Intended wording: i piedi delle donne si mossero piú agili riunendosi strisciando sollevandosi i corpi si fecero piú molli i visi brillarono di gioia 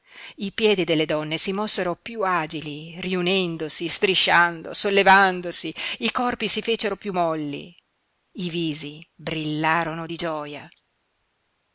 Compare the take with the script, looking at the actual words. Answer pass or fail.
pass